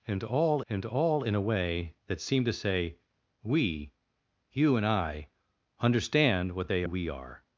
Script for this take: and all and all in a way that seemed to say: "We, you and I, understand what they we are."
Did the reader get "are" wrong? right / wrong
right